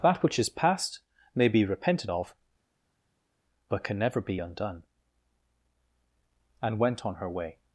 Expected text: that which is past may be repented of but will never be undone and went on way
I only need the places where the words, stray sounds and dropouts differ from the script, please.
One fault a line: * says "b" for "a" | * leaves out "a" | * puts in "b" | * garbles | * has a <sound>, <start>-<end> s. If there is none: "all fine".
* says "can" for "will"
* puts in "her"